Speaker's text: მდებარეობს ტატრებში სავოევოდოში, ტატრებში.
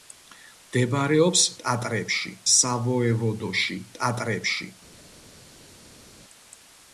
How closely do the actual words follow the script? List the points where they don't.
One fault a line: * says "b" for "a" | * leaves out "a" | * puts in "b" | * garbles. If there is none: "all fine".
all fine